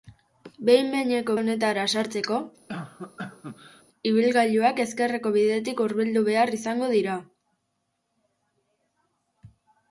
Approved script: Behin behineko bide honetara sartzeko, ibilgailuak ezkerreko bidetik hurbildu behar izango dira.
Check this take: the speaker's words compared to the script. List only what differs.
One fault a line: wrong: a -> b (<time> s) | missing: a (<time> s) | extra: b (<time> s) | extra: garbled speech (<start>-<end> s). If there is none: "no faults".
missing: bide (1.3 s)